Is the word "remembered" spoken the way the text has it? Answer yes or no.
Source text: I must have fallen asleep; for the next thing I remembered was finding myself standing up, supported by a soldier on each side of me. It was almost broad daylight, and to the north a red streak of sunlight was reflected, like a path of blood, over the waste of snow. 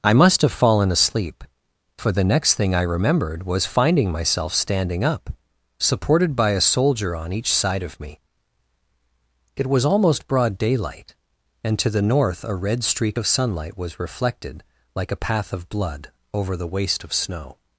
yes